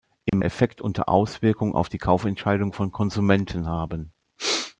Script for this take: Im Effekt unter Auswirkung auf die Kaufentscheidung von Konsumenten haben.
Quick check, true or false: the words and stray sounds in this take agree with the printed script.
false